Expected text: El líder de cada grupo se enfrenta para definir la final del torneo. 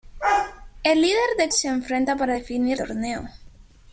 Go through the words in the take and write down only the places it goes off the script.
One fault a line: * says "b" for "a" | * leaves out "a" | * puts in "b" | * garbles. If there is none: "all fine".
* leaves out "cada grupo"
* leaves out "la final del"